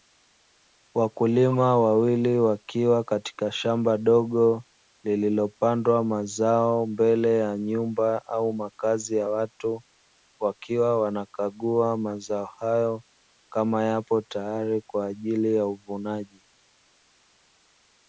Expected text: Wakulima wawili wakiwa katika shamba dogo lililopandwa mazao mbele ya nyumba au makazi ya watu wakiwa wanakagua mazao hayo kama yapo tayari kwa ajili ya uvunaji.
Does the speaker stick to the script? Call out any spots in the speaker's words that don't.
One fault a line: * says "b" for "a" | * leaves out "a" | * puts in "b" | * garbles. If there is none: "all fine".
all fine